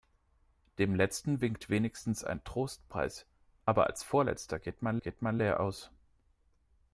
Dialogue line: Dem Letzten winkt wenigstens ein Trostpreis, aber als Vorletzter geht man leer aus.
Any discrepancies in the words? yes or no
yes